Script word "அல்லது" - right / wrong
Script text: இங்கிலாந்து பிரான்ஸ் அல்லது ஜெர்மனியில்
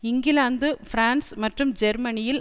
wrong